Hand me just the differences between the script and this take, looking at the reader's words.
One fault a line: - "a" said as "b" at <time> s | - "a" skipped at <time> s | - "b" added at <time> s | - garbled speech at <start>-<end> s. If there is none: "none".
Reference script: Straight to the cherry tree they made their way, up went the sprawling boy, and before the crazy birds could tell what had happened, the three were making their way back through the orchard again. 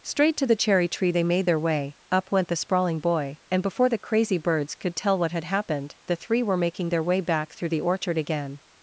none